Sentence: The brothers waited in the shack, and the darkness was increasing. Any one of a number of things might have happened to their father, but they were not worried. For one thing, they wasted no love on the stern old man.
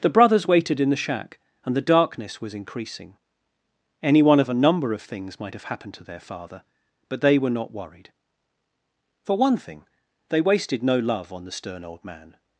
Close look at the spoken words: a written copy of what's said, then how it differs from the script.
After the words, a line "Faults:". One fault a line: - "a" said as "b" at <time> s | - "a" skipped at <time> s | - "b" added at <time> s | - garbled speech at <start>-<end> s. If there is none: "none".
The brothers waited in the shack, and the darkness was increasing. Any one of a number of things might have happened to their father, but they were not worried. For one thing, they wasted no love on the stern old man.
Faults:
none